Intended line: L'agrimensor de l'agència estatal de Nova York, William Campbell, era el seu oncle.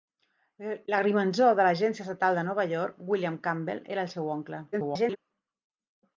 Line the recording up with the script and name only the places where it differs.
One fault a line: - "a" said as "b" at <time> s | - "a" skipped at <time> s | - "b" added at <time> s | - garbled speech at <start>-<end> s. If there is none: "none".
- garbled speech at 4.7-5.2 s